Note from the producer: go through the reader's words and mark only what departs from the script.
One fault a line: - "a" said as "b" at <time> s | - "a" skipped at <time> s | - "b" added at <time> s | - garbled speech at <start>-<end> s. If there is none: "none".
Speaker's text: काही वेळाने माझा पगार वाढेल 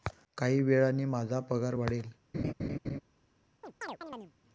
none